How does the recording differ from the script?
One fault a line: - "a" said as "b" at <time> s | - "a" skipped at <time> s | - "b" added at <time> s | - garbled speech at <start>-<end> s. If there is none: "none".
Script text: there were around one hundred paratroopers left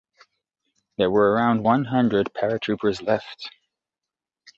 none